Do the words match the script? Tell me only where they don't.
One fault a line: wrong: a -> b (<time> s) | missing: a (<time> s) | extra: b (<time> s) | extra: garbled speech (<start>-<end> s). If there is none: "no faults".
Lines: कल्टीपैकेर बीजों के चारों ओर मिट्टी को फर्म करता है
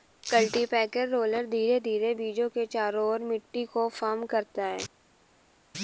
extra: रोलर धीरे धीरे (1.1 s)